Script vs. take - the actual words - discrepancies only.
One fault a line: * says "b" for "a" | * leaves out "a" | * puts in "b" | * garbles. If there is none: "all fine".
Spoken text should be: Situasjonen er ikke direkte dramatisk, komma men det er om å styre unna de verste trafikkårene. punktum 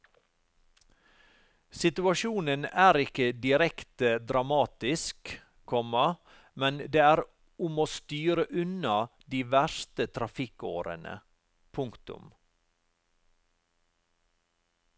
all fine